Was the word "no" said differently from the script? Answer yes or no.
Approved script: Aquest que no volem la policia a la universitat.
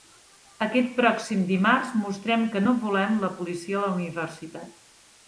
no